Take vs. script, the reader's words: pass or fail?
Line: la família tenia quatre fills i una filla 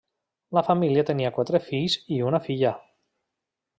pass